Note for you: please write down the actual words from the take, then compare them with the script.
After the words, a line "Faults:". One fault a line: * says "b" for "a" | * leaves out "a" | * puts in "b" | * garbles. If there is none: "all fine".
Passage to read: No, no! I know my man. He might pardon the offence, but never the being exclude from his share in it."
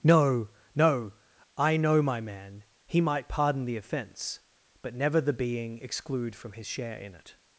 No, no! I know my man. He might pardon the offence, but never the being exclude from his share in it."
Faults:
all fine